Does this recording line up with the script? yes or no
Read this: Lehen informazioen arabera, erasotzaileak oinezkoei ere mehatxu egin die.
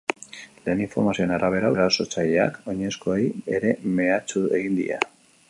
yes